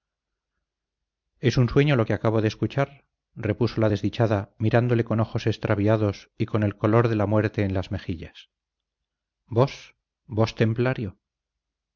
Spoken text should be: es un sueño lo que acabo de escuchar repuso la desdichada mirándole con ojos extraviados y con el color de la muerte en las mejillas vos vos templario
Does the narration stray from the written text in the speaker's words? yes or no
no